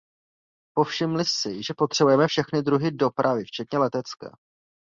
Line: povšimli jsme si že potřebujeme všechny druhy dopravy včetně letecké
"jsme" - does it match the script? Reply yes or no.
no